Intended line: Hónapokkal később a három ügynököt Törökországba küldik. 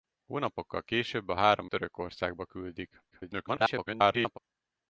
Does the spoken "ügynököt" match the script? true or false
false